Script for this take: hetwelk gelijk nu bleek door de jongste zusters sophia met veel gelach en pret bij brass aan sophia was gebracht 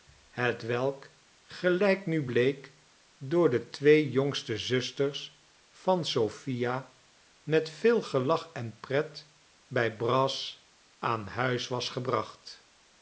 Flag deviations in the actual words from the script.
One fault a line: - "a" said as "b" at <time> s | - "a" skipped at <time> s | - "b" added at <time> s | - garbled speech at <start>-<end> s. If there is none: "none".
- "twee" added at 3.7 s
- "van" added at 5.7 s
- "sophia" said as "huis" at 11.3 s